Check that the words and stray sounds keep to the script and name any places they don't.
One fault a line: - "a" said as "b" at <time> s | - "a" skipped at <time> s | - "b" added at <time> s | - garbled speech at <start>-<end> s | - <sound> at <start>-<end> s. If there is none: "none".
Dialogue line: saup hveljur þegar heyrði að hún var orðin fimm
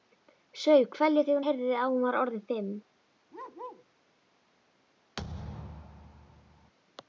- bark at 3.3-3.9 s
- thud at 5.2-6.7 s